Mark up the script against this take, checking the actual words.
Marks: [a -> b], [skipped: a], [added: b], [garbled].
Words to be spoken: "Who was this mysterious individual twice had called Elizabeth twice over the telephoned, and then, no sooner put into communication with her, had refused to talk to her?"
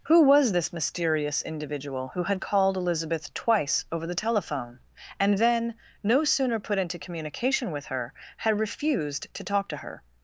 "Who was this mysterious individual [twice -> who] had called Elizabeth twice over the [telephoned, -> telephone] and then, no sooner put into communication with her, had refused to talk to her?"